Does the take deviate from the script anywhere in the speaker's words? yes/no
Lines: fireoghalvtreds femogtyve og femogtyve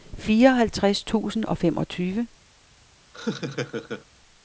yes